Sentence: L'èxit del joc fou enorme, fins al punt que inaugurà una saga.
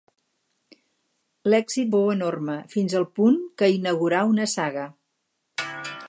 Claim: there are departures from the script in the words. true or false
true